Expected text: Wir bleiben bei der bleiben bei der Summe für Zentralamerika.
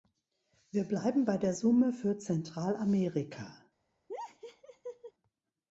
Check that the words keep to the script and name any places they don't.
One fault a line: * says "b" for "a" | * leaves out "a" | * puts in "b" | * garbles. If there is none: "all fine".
* leaves out "bleiben bei der"